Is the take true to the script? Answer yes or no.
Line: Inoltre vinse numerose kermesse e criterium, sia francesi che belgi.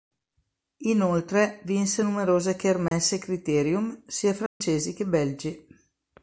yes